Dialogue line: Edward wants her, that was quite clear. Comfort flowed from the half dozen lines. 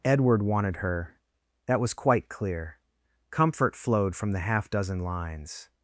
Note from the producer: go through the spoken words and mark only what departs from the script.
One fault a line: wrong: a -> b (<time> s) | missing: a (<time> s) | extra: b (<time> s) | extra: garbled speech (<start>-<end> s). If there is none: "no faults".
wrong: wants -> wanted (0.4 s)